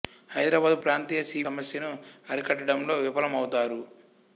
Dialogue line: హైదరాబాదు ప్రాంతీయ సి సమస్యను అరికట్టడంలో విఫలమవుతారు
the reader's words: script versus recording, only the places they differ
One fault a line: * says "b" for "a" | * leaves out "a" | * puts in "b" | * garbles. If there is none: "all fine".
all fine